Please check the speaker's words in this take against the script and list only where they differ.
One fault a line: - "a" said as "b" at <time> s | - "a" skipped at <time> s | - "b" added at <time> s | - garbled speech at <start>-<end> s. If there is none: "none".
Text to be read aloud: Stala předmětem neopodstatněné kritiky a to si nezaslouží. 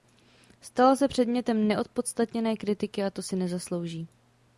- "se" added at 0.9 s